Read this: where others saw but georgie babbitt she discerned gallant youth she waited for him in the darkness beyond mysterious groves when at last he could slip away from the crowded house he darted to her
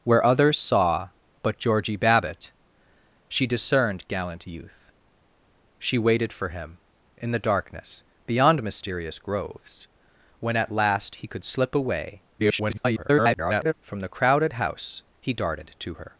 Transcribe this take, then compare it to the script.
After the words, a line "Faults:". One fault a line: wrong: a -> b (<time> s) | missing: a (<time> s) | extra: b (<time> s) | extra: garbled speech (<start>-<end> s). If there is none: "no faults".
where others saw but georgie babbitt she discerned gallant youth she waited for him in the darkness beyond mysterious groves when at last he could slip away [garbled] from the crowded house he darted to her
Faults:
extra: garbled speech (12.4-13.7 s)